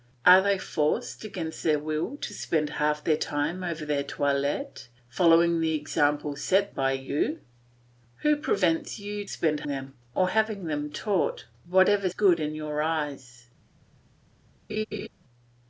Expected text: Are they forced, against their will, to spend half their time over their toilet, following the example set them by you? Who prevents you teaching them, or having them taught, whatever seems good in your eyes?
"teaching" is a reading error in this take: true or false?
true